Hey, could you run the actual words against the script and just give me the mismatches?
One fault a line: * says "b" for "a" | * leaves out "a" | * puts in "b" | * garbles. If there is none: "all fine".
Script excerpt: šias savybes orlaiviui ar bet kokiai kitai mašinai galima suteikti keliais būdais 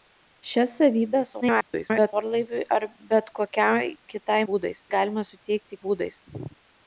* garbles
* says "būdais" for "mašinai"
* leaves out "keliais"